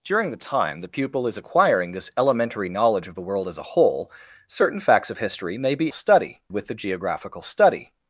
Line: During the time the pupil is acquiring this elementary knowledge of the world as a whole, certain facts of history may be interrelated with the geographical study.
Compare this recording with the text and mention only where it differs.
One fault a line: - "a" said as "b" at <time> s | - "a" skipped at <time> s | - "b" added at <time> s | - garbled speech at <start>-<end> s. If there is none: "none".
- "interrelated" said as "study" at 5.9 s